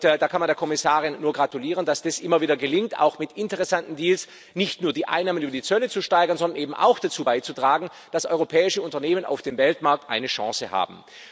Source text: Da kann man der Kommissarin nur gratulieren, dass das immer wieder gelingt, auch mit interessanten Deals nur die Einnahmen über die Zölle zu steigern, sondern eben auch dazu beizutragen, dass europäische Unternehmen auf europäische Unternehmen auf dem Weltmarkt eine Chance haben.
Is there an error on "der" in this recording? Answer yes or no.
no